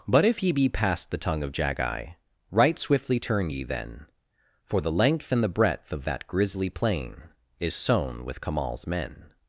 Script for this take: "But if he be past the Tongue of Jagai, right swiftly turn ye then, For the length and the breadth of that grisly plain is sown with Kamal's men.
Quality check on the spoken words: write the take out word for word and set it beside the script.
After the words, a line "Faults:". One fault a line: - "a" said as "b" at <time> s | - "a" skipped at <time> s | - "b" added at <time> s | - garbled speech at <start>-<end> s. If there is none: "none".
"But if he be past the Tongue of Jagai, right swiftly turn ye then, For the length and the breadth of that grisly plain is sown with Kamal's men.
Faults:
none